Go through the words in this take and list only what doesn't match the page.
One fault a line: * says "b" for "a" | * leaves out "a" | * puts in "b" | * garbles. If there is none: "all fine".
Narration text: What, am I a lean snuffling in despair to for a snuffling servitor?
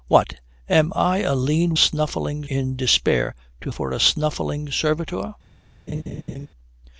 all fine